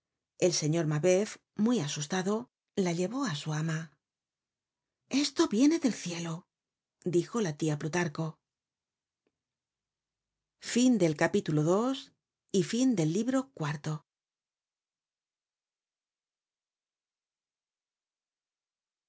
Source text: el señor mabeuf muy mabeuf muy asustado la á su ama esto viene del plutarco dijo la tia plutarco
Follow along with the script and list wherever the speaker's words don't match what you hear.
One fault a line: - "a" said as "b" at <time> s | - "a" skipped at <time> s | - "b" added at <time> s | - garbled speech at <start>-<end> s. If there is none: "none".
- "mabeuf muy" skipped at 1.8 s
- "llevó" added at 3.0 s
- "plutarco" said as "cielo" at 5.9 s